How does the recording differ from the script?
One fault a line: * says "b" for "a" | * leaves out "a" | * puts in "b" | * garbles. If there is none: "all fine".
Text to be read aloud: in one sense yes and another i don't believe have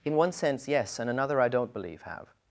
all fine